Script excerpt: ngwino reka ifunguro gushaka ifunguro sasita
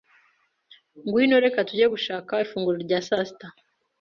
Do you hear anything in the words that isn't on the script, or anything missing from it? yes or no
yes